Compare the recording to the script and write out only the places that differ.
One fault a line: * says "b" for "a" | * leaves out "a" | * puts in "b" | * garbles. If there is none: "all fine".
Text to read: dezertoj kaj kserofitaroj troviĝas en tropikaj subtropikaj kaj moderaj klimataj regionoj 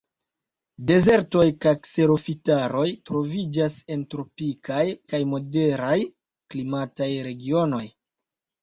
* leaves out "subtropikaj"